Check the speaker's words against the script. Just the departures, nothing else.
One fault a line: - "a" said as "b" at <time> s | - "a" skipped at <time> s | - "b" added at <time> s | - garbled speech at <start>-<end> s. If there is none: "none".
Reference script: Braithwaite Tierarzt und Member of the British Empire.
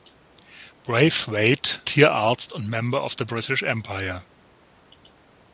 none